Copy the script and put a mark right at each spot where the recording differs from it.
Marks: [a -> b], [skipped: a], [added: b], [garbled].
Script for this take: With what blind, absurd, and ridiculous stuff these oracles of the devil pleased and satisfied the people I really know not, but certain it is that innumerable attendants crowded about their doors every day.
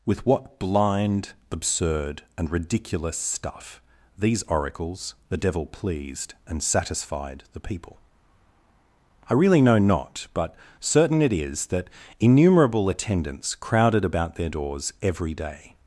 With what blind, absurd, and ridiculous stuff these oracles [skipped: of] the devil pleased and satisfied the people I really know not, but certain it is that innumerable attendants crowded about their doors every day.